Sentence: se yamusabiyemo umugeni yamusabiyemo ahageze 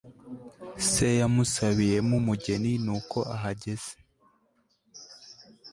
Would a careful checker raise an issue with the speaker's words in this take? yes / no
yes